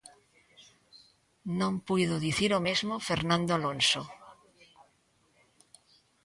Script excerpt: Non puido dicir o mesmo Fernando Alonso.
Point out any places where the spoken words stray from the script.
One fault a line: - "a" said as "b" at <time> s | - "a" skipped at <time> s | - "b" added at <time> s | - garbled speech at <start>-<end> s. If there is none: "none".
none